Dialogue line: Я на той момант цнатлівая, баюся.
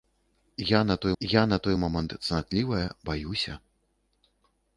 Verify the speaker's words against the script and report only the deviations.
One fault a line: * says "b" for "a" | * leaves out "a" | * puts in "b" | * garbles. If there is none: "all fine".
* puts in "я на той"